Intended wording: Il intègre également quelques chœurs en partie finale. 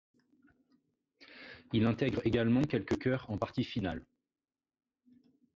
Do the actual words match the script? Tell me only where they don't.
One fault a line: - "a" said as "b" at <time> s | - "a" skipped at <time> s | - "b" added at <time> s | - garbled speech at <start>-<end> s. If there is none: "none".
none